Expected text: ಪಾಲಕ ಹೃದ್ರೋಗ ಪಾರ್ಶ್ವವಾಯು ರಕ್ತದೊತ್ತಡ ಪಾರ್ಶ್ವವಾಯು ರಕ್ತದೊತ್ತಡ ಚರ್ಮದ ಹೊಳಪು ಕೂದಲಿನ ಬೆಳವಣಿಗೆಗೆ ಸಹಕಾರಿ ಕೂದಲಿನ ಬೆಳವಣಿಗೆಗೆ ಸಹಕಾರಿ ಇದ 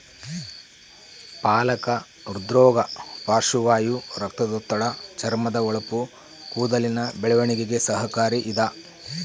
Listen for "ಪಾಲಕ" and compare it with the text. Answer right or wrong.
right